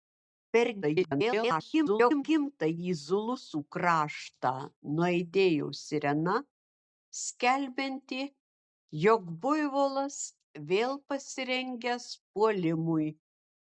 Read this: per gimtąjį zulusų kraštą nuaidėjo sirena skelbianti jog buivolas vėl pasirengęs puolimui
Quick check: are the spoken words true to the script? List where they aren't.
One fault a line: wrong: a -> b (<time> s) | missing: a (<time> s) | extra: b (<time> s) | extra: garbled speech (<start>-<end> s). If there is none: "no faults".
extra: garbled speech (0.8-2.2 s)